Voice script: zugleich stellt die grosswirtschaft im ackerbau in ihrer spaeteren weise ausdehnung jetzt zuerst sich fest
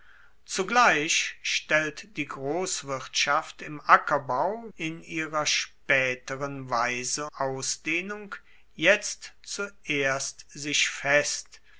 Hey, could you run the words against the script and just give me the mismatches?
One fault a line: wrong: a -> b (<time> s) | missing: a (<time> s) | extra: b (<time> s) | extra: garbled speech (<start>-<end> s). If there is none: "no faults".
no faults